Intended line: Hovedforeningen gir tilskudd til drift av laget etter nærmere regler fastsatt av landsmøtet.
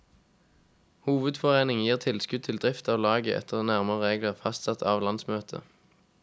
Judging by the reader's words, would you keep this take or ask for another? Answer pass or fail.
pass